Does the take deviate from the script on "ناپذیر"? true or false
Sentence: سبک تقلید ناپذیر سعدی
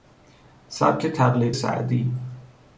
true